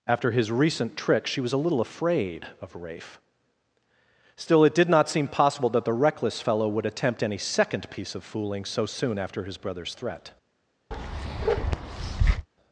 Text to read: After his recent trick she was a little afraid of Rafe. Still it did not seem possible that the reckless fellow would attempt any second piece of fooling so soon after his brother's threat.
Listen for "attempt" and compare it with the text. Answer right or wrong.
right